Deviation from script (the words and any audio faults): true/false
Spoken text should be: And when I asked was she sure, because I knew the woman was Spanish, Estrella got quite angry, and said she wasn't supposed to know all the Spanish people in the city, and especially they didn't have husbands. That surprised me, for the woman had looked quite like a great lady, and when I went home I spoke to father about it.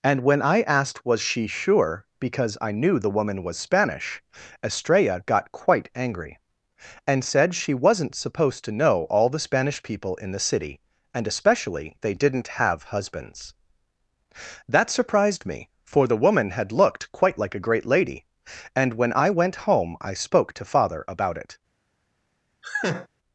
true